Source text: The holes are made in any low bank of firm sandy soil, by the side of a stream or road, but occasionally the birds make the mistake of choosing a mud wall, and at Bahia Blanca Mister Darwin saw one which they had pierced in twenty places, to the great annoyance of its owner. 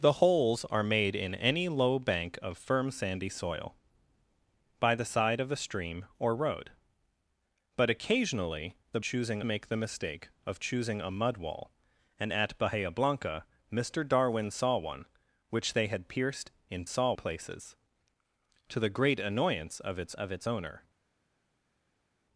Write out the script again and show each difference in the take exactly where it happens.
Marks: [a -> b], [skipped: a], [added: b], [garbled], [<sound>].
The holes are made in any low bank of firm sandy soil, by the side of a stream or road, but occasionally the [birds -> choosing] make the mistake of choosing a mud wall, and at Bahia Blanca Mister Darwin saw one which they had pierced in [twenty -> saw] places, to the great annoyance of its [added: of its] owner.